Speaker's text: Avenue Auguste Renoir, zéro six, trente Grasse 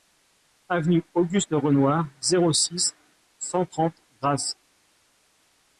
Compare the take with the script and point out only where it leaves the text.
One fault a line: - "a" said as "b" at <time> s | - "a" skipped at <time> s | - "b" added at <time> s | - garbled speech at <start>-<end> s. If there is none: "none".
- "cent" added at 3.4 s